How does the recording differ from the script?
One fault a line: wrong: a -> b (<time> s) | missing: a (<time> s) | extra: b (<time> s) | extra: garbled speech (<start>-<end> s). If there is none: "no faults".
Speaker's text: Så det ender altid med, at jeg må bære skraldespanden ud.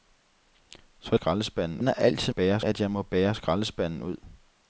wrong: det -> skraldespanden (1.1 s)
wrong: med -> bære (2.3 s)